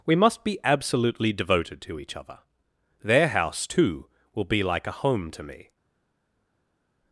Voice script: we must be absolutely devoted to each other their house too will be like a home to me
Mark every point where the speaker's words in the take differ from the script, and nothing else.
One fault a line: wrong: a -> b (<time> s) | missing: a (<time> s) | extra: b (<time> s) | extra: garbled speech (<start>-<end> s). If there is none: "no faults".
no faults